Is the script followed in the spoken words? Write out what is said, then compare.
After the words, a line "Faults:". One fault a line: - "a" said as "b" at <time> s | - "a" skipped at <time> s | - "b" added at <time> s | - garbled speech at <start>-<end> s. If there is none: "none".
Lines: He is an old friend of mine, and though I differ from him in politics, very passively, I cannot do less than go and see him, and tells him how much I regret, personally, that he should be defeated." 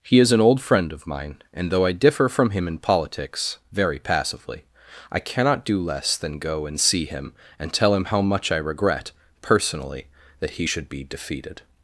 He is an old friend of mine, and though I differ from him in politics, very passively, I cannot do less than go and see him, and tell him how much I regret, personally, that he should be defeated."
Faults:
- "tells" said as "tell" at 7.7 s